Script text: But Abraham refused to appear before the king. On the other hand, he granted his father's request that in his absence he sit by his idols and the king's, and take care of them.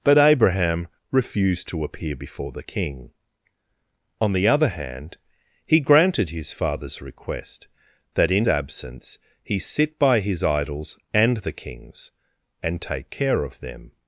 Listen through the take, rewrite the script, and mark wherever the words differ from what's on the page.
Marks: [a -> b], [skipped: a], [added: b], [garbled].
But Abraham refused to appear before the king. On the other hand, he granted his father's request that in [skipped: his] absence he sit by his idols and the king's, and take care of them.